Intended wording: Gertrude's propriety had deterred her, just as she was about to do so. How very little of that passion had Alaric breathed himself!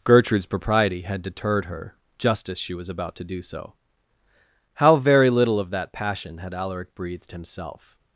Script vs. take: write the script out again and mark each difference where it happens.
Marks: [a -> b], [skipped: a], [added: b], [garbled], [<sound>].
Gertrude's propriety had deterred her, just as she was about to do so. How very little of that passion had Alaric breathed himself!